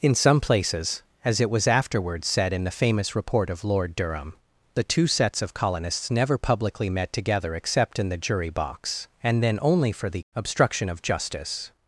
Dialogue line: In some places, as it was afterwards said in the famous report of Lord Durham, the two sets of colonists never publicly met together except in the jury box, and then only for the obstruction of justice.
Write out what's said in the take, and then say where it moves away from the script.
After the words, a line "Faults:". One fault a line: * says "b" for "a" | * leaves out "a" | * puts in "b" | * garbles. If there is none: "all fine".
In some places, as it was afterwards said in the famous report of Lord Durham, the two sets of colonists never publicly met together except in the jury box, and then only for the obstruction of justice.
Faults:
all fine